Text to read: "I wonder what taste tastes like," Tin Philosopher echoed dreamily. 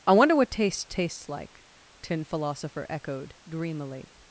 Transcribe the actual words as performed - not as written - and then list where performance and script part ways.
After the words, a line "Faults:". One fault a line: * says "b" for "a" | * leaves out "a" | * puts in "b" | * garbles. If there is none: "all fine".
"I wonder what taste tastes like," Tin Philosopher echoed dreamily.
Faults:
all fine